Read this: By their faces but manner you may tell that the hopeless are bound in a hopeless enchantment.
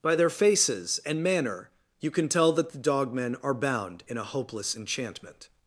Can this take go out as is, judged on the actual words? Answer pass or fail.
fail